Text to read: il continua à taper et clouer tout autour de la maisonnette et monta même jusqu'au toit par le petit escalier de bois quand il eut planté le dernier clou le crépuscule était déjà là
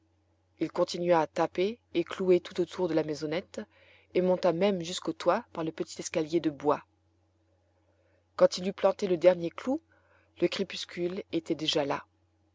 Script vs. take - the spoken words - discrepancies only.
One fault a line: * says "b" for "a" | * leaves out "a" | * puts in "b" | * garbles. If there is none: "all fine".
all fine